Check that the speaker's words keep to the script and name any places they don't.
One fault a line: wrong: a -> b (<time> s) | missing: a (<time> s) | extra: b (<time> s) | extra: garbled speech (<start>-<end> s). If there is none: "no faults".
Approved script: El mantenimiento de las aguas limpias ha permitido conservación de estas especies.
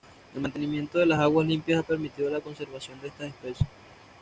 extra: la (2.3 s)